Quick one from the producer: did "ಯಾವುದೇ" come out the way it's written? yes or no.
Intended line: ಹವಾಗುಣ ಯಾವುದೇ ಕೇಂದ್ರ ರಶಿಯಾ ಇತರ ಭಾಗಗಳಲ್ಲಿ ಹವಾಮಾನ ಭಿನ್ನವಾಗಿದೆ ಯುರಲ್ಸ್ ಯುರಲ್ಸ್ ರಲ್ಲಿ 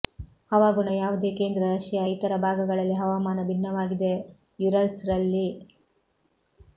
yes